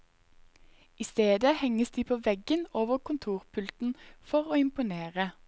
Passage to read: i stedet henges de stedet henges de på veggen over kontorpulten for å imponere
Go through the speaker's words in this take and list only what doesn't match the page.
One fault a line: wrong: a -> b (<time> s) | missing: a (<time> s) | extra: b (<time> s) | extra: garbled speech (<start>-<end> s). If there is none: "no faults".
missing: stedet henges de (2.0 s)